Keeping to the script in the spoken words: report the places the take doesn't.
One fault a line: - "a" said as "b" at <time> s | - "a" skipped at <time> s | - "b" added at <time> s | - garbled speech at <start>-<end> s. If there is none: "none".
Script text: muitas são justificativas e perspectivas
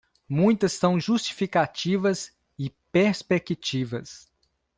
none